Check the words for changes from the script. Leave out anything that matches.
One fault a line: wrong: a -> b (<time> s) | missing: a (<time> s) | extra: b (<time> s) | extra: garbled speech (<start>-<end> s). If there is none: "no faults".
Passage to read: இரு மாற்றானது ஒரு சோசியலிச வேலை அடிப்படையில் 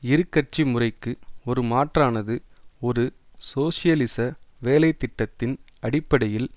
extra: கட்சி முறைக்கு ஒரு (0.3 s)
extra: திட்டத்தின் (5.0 s)